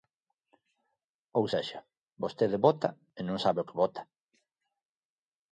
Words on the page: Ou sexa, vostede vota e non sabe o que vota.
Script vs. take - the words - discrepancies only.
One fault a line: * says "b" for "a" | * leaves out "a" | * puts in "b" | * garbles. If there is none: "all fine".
all fine